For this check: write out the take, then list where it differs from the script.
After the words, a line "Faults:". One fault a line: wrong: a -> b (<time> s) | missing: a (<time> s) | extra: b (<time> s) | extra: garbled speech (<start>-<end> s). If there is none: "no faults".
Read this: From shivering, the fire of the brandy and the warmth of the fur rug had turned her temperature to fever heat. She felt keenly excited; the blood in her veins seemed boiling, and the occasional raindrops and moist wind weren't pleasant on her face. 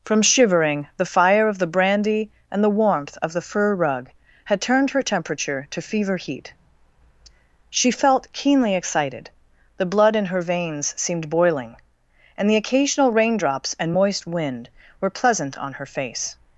From shivering, the fire of the brandy and the warmth of the fur rug had turned her temperature to fever heat. She felt keenly excited; the blood in her veins seemed boiling, and the occasional raindrops and moist wind were pleasant on her face.
Faults:
wrong: weren't -> were (15.0 s)